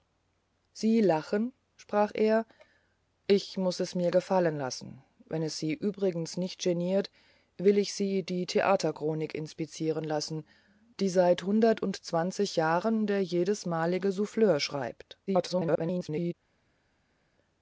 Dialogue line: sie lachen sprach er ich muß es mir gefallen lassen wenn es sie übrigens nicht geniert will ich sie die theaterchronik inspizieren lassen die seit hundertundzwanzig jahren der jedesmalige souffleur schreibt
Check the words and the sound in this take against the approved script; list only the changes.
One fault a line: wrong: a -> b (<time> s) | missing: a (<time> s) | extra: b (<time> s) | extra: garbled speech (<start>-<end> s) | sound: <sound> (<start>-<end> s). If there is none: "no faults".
extra: garbled speech (15.3-16.3 s)